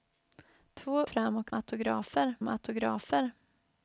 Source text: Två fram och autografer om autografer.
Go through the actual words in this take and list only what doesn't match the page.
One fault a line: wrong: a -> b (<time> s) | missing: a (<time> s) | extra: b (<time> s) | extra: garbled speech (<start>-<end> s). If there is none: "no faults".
no faults